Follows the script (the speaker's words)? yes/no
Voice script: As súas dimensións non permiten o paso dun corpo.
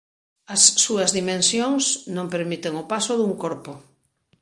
yes